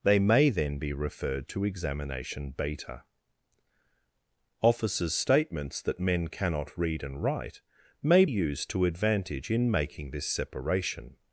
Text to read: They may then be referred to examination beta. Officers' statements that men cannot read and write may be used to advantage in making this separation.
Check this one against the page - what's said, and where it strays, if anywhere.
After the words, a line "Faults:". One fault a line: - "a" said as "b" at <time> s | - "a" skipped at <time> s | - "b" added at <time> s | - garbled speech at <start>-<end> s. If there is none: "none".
They may then be referred to examination beta. Officers' statements that men cannot read and write may used to advantage in making this separation.
Faults:
- "be" skipped at 8.2 s